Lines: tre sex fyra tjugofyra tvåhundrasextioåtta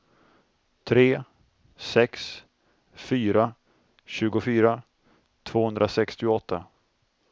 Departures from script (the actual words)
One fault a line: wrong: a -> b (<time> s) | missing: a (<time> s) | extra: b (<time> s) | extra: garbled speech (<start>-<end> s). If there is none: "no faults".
no faults